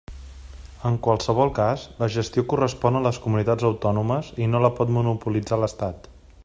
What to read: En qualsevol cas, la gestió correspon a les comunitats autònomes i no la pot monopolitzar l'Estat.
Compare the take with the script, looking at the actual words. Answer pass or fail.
pass